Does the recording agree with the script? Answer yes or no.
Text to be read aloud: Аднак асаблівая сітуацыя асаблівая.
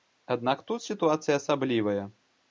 no